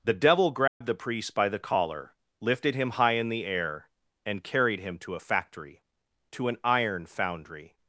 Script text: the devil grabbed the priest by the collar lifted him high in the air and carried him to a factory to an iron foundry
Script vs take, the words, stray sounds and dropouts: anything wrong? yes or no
yes